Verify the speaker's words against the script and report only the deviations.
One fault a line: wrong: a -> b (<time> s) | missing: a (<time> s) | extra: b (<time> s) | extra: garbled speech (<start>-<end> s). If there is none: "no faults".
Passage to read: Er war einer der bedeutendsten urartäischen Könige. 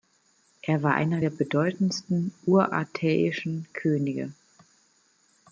no faults